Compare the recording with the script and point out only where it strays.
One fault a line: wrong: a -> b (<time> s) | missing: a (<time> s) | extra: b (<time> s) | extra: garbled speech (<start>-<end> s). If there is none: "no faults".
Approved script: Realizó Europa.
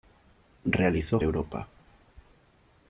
no faults